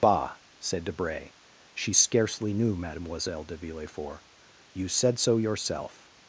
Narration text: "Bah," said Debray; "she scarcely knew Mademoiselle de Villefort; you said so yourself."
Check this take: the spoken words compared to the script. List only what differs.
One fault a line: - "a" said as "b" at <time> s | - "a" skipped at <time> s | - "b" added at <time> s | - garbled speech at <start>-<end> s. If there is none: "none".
none